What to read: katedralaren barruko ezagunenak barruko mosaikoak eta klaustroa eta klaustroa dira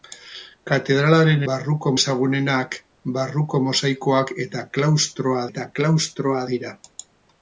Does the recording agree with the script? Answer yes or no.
yes